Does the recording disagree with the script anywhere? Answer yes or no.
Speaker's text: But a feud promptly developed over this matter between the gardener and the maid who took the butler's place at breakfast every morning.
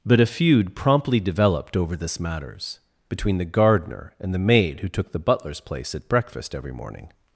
yes